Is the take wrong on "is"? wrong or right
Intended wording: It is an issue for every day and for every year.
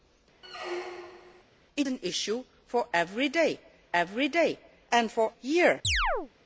wrong